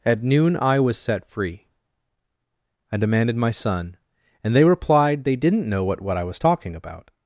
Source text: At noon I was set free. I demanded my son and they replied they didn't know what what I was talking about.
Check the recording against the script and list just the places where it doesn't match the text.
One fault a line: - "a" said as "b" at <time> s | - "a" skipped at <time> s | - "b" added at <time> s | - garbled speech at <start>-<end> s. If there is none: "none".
none